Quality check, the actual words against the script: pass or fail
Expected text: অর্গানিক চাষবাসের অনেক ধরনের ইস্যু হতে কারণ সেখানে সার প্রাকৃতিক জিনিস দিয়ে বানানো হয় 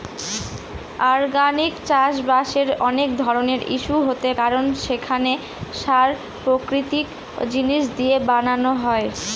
pass